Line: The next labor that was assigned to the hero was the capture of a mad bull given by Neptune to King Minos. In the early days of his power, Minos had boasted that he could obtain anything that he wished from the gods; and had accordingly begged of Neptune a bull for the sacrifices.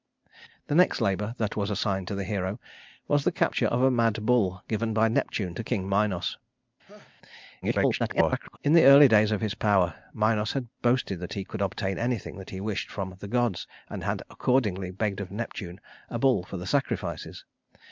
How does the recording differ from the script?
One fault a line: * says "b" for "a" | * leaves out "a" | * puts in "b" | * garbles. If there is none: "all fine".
* garbles